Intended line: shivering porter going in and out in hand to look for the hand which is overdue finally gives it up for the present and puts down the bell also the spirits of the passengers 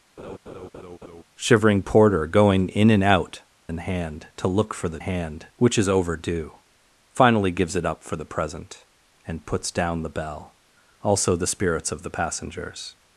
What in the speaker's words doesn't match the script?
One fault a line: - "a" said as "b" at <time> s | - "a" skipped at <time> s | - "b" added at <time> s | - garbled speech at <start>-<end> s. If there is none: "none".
none